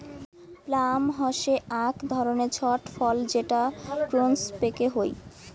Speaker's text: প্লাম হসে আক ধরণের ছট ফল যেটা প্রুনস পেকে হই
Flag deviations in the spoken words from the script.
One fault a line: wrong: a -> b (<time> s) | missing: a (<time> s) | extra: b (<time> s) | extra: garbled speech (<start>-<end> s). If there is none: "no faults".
no faults